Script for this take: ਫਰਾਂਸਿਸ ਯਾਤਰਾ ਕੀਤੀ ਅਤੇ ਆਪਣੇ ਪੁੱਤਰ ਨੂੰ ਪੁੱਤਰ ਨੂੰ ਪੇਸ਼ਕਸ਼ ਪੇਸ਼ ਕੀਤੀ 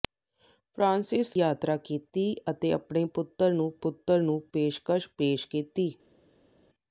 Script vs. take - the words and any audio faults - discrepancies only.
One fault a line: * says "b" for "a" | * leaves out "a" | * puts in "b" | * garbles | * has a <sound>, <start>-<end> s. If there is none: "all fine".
all fine